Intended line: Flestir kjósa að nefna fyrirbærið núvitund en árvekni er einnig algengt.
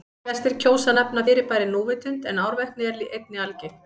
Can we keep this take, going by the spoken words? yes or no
yes